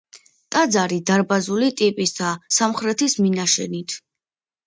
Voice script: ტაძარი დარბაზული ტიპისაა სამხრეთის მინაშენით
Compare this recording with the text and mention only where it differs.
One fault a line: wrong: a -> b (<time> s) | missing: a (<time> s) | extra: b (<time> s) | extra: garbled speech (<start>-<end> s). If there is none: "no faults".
no faults